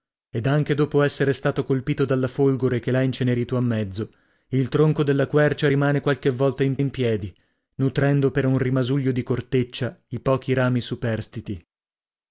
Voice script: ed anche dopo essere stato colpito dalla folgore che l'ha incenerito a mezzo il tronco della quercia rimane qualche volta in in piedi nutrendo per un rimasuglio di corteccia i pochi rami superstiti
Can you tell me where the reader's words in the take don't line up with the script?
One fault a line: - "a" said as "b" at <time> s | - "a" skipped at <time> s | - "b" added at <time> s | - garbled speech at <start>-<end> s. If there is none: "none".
none